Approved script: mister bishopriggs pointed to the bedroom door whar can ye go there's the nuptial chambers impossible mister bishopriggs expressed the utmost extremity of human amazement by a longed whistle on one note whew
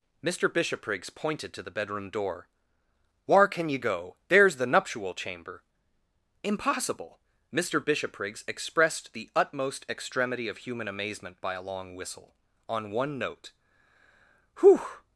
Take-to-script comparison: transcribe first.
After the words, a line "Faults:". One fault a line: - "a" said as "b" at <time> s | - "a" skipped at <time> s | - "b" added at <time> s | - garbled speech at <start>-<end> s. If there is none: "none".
mister bishopriggs pointed to the bedroom door whar can ye go there's the nuptial chamber impossible mister bishopriggs expressed the utmost extremity of human amazement by a long whistle on one note whew
Faults:
- "chambers" said as "chamber" at 5.1 s
- "longed" said as "long" at 11.6 s